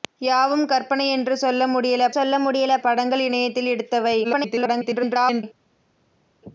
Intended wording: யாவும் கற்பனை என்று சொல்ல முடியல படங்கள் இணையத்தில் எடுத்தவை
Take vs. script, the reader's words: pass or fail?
fail